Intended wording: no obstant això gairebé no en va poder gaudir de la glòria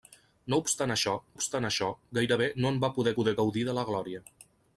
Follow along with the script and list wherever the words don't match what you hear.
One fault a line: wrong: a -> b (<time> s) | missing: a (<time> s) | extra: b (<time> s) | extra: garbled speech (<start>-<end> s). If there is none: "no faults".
extra: obstant això (1.3 s)
extra: poder (3.2 s)